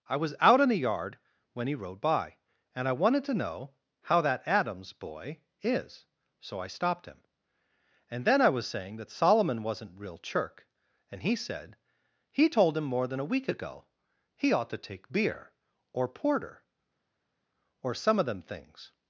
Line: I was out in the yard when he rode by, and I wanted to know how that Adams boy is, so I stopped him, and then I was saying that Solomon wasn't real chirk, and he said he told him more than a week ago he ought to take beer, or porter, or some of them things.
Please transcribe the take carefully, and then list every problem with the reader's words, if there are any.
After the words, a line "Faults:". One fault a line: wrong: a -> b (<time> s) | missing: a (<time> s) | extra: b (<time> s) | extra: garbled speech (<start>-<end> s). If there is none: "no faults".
I was out in the yard when he rode by, and I wanted to know how that Adams boy is, so I stopped him, and then I was saying that Solomon wasn't real chirk, and he said he told him more than a week ago he ought to take beer, or porter, or some of them things.
Faults:
no faults